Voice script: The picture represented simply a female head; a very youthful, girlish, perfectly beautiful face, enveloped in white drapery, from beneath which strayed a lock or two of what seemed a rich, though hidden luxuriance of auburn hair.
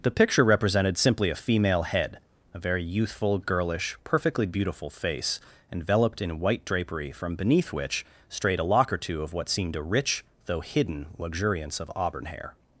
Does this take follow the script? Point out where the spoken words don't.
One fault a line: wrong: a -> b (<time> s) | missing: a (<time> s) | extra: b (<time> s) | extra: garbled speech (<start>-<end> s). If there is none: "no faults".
no faults